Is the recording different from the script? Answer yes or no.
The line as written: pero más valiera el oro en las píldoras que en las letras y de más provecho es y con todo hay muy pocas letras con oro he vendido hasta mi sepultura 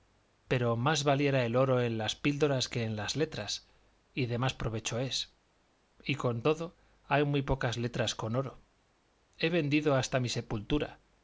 no